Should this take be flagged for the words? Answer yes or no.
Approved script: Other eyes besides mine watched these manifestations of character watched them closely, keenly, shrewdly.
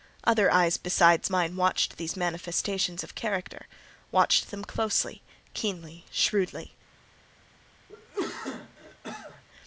no